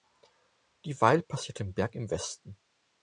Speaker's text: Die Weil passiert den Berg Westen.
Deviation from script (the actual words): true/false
true